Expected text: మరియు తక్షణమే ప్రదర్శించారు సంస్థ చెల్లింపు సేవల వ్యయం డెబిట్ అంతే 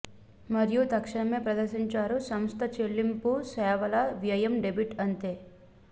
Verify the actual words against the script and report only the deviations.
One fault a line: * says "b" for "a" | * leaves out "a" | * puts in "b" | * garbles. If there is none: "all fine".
all fine